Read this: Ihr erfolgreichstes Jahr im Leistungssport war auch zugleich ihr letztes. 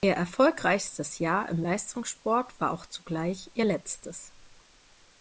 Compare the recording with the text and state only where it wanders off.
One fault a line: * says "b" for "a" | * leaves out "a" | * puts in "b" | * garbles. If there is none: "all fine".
all fine